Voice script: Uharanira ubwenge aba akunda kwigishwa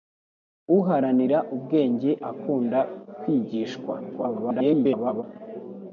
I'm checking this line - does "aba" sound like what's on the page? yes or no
no